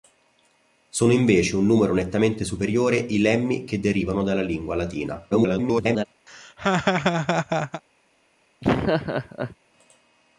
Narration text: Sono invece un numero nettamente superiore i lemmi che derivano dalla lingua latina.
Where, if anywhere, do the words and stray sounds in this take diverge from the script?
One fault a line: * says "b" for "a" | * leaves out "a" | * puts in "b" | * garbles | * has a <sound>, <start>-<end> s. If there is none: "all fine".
* garbles
* has a laugh, 6.3-7.8 s
* has a laugh, 8.6-9.6 s